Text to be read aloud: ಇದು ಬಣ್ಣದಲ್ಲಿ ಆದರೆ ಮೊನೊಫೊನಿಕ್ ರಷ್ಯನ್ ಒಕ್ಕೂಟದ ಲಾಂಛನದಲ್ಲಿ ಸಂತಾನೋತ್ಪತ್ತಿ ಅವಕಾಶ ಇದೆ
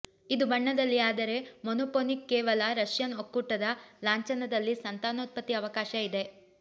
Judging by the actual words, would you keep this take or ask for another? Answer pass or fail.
fail